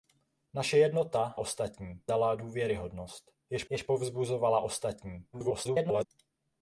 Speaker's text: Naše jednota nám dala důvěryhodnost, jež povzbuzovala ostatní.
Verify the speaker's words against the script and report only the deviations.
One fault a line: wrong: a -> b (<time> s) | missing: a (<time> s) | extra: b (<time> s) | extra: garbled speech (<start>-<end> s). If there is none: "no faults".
wrong: nám -> ostatní (1.4 s)
extra: jež (3.7 s)
extra: garbled speech (5.3-6.1 s)